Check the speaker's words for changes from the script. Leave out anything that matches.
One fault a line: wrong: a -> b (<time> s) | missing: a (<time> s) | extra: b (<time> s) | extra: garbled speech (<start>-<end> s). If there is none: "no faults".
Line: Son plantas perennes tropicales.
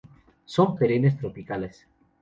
missing: plantas (0.8 s)